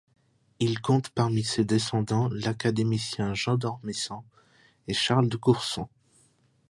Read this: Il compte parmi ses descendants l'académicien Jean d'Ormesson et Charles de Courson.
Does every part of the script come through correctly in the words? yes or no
yes